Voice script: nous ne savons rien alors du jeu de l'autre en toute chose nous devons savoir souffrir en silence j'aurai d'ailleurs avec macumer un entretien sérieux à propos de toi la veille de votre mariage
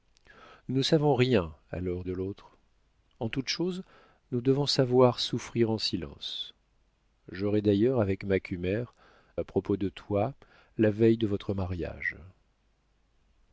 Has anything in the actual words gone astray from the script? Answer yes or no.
yes